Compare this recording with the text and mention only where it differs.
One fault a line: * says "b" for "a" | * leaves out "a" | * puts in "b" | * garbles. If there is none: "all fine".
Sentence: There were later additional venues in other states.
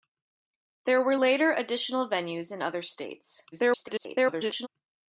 * garbles